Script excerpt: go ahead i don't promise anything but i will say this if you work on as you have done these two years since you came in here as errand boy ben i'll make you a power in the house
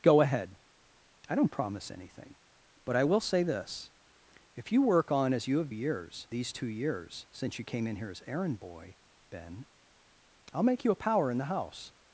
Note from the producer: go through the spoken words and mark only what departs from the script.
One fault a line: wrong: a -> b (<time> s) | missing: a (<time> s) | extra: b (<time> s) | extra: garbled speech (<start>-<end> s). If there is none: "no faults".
wrong: done -> years (5.7 s)